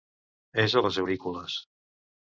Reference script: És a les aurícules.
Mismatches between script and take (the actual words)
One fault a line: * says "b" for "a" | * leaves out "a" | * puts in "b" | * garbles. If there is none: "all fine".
all fine